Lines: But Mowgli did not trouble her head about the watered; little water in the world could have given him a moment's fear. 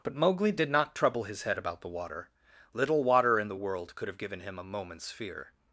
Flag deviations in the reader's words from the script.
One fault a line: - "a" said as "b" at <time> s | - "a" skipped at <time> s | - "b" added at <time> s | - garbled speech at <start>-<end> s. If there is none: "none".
- "her" said as "his" at 1.2 s
- "watered" said as "water" at 1.9 s